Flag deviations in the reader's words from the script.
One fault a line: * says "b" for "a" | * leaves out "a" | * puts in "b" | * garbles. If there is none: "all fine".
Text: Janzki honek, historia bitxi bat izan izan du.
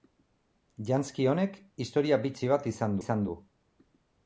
all fine